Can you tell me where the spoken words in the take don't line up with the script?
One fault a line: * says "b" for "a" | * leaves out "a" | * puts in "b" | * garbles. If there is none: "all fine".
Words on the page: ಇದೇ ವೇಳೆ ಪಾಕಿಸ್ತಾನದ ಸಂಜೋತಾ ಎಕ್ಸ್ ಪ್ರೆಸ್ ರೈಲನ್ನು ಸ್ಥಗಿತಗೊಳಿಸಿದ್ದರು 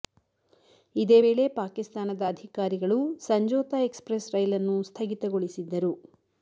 * puts in "ಅಧಿಕಾರಿಗಳು"